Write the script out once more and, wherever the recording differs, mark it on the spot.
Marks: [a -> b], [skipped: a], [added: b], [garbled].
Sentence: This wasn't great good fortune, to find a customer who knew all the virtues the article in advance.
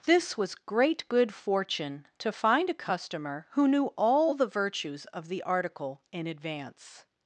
This [wasn't -> was] great good fortune, to find a customer who knew all the virtues [added: of] the article in advance.